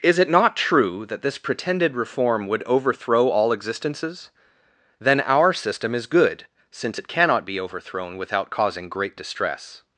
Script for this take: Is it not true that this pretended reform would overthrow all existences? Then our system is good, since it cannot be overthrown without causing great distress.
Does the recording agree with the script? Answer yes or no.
yes